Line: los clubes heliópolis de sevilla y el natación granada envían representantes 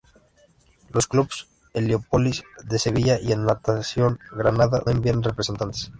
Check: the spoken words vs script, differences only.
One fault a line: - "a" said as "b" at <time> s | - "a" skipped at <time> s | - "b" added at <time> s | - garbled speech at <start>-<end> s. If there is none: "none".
none